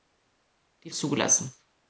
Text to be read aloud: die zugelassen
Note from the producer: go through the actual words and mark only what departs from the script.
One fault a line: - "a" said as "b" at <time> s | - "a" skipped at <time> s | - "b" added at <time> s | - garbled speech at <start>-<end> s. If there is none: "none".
none